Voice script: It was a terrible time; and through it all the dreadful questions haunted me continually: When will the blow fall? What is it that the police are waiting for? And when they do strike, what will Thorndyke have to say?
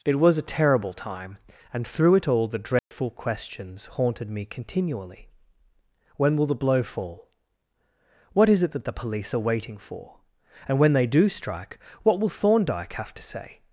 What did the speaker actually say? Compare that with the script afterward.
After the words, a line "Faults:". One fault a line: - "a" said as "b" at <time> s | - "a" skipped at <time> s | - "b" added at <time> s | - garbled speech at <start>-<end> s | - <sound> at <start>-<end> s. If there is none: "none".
It was a terrible time; and through it all the dreadful questions haunted me continually: When will the blow fall? What is it that the police are waiting for? And when they do strike, what will Thorndyke have to say?
Faults:
- dropout at 2.8-2.9 s